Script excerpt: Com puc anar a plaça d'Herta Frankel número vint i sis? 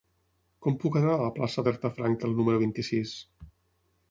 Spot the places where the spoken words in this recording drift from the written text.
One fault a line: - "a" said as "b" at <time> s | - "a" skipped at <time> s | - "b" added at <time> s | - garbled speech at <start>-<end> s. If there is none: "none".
- "la" added at 1.2 s